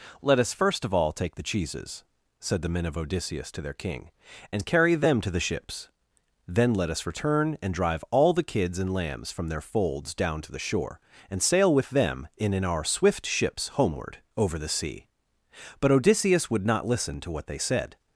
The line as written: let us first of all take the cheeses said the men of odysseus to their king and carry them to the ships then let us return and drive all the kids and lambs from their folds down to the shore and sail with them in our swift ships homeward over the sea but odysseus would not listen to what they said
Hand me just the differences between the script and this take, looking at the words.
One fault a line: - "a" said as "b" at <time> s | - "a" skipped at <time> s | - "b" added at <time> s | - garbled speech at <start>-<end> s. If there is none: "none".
- "in" added at 12.5 s